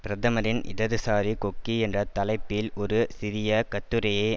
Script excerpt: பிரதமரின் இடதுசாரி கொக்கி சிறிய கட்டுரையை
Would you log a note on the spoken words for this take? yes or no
yes